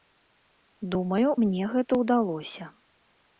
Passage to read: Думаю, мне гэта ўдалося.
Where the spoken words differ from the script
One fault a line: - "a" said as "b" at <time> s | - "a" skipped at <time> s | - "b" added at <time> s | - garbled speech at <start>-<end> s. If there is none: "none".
none